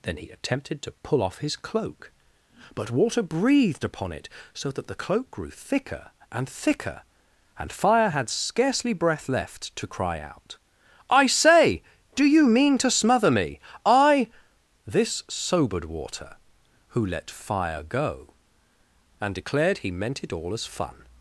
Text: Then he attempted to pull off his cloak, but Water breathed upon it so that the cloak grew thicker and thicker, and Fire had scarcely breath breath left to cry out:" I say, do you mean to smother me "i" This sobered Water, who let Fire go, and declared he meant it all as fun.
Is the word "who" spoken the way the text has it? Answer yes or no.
yes